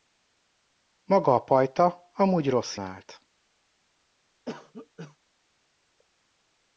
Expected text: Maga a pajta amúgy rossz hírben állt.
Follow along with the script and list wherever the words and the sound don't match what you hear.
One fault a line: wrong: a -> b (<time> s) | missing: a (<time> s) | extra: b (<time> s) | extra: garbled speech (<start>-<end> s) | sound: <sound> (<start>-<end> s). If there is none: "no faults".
missing: hírben (2.8 s)
sound: cough (4.5-5.2 s)